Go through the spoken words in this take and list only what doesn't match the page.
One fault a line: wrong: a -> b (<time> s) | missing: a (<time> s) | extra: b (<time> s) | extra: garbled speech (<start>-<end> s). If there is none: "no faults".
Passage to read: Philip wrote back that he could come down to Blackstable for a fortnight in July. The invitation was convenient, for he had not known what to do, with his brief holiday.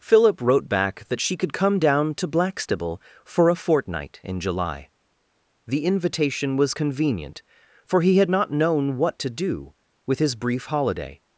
wrong: he -> she (1.2 s)